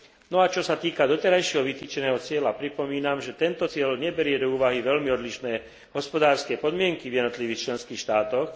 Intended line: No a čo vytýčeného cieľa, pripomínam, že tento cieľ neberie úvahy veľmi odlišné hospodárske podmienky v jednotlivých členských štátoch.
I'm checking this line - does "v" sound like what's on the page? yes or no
yes